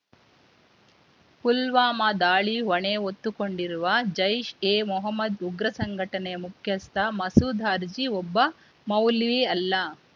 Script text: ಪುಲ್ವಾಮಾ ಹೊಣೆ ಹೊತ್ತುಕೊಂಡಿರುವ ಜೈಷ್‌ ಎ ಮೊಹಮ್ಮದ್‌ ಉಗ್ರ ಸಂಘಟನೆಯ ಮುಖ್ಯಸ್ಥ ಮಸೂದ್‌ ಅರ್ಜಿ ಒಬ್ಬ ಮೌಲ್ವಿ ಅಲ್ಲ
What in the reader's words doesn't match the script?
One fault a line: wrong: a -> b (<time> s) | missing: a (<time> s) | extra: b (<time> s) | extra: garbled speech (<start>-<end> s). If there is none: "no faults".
extra: ದಾಳಿ (2.2 s)